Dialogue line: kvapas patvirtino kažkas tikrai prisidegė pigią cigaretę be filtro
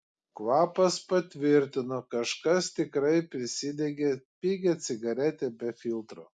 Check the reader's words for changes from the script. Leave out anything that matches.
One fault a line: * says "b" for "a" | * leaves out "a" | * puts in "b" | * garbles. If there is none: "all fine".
all fine